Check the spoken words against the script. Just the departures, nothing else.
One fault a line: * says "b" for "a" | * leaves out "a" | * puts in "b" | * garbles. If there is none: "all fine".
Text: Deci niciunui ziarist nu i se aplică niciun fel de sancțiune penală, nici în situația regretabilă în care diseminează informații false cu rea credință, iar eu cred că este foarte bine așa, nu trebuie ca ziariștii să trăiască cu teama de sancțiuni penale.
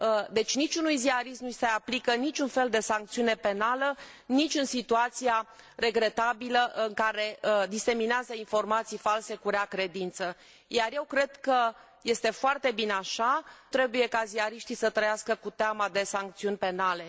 * leaves out "nu"